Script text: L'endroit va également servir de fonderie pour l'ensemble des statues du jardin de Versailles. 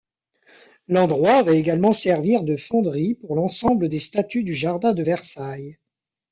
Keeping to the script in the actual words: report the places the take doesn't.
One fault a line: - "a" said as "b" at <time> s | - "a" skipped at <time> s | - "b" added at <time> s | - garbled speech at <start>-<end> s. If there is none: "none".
none